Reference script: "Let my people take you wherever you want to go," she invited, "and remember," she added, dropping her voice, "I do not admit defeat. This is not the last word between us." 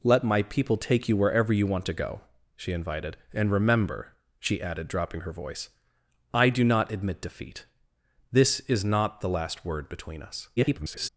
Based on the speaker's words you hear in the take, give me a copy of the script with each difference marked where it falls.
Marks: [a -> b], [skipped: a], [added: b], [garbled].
"Let my people take you wherever you want to go," she invited, "and remember," she added, dropping her voice, "I do not admit defeat. This is not the last word between us." [garbled]